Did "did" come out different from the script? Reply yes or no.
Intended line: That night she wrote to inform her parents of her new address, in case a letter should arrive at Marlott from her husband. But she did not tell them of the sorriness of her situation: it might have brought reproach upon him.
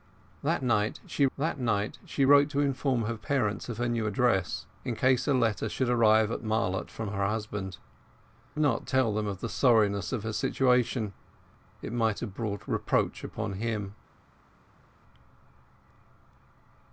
yes